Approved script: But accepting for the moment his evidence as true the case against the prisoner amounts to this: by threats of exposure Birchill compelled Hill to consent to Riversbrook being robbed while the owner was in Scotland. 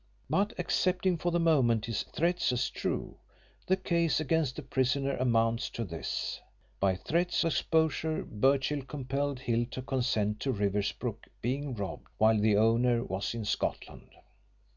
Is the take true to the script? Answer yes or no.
no